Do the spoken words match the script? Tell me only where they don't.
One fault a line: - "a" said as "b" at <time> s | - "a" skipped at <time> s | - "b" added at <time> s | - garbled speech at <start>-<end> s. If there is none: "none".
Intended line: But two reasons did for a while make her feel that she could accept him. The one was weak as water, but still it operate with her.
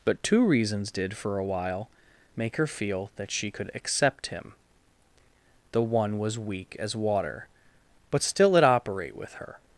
none